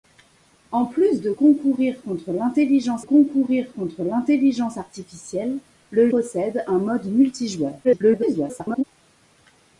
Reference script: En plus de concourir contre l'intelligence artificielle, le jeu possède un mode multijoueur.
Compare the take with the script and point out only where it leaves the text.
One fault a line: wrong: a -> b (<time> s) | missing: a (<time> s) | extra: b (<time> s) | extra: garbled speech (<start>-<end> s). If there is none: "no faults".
extra: concourir contre l'intelligence (3.0 s)
missing: jeu (6.1 s)
extra: garbled speech (7.8-8.8 s)